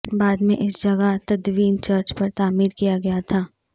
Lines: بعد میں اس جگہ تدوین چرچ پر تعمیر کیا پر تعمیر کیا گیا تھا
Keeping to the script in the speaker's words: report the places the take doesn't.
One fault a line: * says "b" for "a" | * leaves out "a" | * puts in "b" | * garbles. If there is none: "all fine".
* leaves out "پر تعمیر کیا"